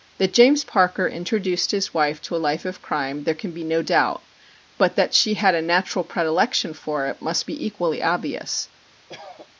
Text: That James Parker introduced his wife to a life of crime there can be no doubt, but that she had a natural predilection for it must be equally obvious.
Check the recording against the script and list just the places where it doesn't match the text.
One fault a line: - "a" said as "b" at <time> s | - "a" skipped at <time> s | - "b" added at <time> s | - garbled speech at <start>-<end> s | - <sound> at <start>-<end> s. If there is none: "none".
- cough at 9.1-9.5 s